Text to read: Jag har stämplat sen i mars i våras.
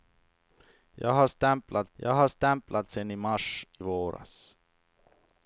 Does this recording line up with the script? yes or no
no